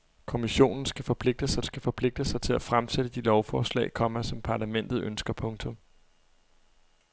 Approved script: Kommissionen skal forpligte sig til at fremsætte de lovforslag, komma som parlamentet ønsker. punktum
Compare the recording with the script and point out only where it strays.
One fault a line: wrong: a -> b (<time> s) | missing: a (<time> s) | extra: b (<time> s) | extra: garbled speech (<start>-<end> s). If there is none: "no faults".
extra: skal forpligte sig (1.6 s)